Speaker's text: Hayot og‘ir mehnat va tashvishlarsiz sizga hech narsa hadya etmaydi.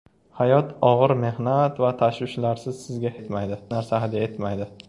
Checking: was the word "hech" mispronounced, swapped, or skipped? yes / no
yes